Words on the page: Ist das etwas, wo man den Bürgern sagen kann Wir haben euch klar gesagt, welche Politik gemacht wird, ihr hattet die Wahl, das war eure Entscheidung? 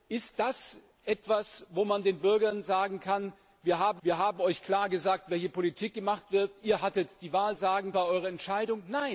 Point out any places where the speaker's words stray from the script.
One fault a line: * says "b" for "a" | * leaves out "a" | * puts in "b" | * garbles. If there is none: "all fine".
* puts in "Wir haben"
* says "sagen" for "das"